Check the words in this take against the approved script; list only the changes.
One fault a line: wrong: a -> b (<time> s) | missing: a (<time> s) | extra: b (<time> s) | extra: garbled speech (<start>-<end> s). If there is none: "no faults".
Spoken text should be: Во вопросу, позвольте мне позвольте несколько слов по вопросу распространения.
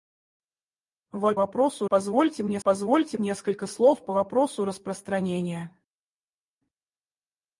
no faults